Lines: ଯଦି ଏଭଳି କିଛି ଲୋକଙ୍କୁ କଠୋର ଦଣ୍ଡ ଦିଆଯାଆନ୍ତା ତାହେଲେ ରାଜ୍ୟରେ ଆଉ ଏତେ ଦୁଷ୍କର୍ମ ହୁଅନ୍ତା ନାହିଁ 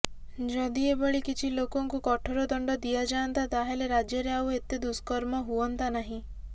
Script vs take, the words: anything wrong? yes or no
no